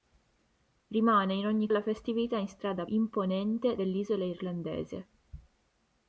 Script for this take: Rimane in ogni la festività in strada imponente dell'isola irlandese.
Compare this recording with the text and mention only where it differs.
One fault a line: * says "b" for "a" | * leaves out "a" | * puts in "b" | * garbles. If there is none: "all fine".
all fine